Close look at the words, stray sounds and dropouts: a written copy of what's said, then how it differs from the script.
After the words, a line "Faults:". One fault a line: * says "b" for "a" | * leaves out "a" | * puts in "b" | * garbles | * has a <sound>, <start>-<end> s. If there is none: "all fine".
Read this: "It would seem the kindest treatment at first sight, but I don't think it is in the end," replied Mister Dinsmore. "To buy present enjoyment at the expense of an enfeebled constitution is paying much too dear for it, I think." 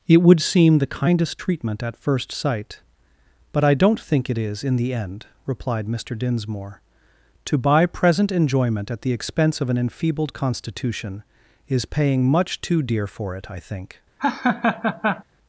"It would seem the kindest treatment at first sight, but I don't think it is in the end," replied Mister Dinsmore. "To buy present enjoyment at the expense of an enfeebled constitution is paying much too dear for it, I think."
Faults:
* has a laugh, 14.2-15.2 s